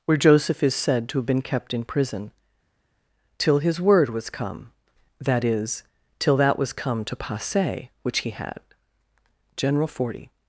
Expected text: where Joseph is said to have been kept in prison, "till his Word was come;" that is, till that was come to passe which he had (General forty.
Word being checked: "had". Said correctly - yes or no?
yes